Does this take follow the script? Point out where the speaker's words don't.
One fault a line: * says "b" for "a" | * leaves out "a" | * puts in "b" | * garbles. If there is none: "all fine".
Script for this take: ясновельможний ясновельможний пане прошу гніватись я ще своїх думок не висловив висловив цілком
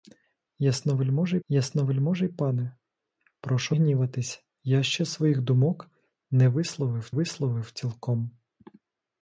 all fine